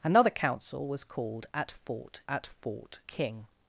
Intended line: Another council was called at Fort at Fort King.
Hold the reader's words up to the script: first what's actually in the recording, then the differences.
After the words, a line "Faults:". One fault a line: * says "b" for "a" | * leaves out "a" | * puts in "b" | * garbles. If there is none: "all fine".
Another council was called at Fort at Fort King.
Faults:
all fine